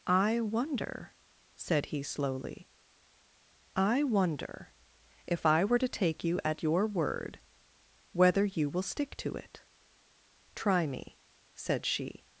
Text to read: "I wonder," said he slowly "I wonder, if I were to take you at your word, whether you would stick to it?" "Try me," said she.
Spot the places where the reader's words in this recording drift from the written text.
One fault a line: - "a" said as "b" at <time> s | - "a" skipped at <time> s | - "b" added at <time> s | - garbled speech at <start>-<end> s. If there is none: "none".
- "would" said as "will" at 8.7 s